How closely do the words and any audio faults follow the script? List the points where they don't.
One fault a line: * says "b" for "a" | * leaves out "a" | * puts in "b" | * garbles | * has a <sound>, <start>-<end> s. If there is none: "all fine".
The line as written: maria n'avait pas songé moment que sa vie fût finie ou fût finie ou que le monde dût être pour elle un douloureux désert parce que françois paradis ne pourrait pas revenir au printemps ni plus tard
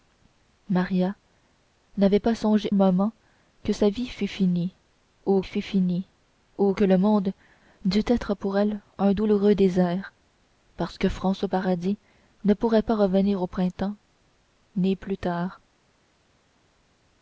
all fine